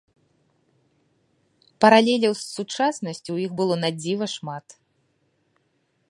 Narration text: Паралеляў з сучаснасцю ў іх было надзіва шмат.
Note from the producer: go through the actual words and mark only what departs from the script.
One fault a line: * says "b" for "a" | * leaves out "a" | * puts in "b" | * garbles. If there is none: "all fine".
all fine